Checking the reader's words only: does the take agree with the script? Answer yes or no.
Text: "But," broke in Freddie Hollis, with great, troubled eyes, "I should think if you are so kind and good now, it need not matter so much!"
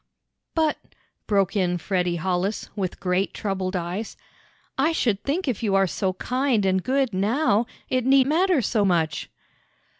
no